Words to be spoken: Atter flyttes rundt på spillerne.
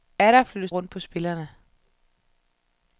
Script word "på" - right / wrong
right